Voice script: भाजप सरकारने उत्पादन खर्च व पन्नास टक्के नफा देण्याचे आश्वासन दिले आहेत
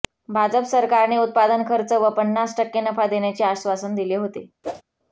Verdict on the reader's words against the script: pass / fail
fail